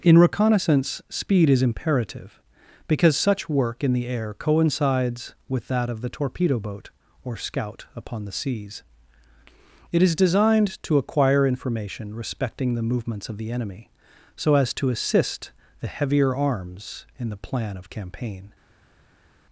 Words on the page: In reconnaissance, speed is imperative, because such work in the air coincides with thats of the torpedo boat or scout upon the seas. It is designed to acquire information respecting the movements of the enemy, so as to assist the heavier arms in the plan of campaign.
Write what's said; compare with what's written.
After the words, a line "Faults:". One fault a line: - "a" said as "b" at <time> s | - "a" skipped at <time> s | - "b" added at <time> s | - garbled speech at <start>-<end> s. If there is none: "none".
In reconnaissance, speed is imperative, because such work in the air coincides with that of the torpedo boat or scout upon the seas. It is designed to acquire information respecting the movements of the enemy, so as to assist the heavier arms in the plan of campaign.
Faults:
- "thats" said as "that" at 5.7 s